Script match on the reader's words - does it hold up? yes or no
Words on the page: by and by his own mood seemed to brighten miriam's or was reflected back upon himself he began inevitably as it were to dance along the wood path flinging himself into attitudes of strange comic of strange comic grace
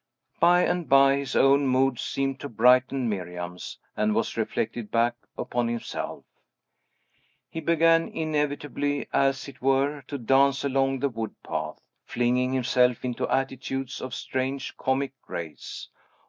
no